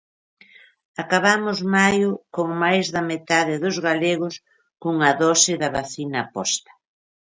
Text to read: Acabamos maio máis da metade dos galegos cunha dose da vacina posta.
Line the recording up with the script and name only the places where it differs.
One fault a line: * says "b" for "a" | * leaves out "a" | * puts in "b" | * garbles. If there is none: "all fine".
* puts in "con"